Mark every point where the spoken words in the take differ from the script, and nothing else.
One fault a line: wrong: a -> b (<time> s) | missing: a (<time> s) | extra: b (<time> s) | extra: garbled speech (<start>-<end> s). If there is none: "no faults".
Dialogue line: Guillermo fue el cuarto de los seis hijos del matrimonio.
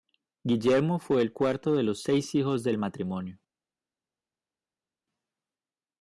no faults